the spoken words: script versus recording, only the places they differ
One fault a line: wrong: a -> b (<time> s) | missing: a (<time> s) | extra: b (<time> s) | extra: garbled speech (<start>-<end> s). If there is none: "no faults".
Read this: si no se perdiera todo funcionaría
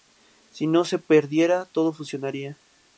no faults